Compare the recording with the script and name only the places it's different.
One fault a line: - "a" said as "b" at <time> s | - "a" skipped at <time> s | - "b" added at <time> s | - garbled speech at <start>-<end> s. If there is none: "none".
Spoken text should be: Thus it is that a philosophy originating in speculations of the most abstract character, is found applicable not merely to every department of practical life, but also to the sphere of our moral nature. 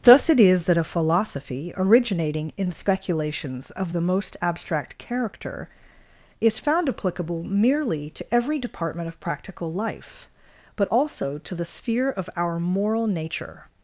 - "not" skipped at 7.4 s